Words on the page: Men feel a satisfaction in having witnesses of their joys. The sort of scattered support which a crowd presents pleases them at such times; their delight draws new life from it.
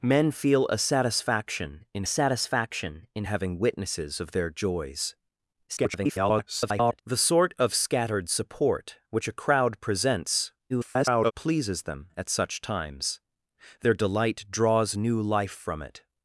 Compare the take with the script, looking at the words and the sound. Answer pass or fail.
fail